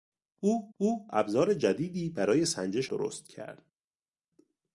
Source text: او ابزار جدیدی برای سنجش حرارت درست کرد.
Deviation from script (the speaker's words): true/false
true